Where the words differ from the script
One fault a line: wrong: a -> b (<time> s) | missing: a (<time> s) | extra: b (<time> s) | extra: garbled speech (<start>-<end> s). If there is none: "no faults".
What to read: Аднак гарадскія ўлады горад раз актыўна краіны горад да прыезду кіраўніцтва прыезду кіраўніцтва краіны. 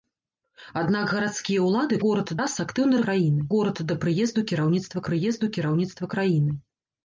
no faults